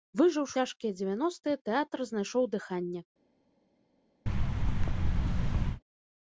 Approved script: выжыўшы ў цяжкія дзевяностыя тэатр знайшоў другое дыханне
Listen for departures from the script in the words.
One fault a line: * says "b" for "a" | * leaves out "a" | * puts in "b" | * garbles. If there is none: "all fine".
* leaves out "ў"
* leaves out "другое"